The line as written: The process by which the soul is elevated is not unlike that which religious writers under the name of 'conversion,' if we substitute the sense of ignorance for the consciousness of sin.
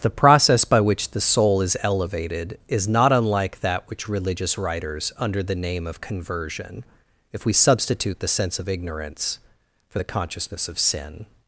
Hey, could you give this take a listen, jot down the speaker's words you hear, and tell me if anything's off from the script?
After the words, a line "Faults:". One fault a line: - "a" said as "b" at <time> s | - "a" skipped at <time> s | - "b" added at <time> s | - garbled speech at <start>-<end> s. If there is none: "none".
The process by which the soul is elevated is not unlike that which religious writers under the name of 'conversion,' if we substitute the sense of ignorance for the consciousness of sin.
Faults:
none